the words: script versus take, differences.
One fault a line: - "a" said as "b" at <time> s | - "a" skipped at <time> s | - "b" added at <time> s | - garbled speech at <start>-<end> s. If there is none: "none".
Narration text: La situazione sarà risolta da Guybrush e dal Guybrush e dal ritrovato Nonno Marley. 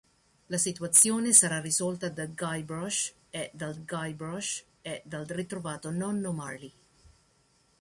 none